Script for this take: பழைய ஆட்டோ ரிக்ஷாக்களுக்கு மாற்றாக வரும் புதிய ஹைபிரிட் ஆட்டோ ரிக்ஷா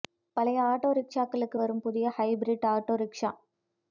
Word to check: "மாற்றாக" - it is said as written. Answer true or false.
false